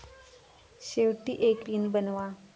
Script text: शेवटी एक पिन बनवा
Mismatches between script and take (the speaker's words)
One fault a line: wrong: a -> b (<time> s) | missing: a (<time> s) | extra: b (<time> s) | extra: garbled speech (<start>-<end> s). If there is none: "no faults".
no faults